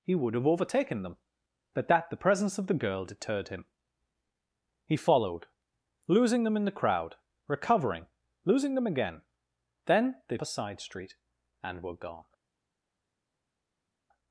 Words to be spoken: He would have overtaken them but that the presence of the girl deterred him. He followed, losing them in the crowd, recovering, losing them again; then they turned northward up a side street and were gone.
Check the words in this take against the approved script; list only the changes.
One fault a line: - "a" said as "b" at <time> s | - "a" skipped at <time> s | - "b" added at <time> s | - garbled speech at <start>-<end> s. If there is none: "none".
- "turned northward up" skipped at 10.4 s